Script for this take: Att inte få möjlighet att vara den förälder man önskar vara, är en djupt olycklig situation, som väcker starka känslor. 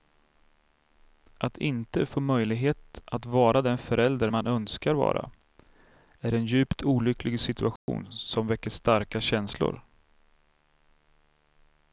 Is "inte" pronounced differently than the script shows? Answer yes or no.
no